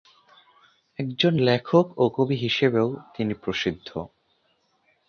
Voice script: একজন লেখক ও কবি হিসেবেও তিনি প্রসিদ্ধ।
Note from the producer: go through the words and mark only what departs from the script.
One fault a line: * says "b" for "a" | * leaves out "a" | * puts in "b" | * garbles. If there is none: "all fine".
all fine